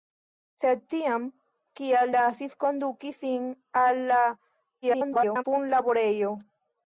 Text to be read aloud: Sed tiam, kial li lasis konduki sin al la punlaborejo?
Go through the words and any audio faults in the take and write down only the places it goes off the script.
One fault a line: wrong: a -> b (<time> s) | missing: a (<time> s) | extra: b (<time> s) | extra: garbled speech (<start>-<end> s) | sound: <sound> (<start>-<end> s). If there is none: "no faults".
missing: li (2.1 s)
extra: garbled speech (4.8-5.4 s)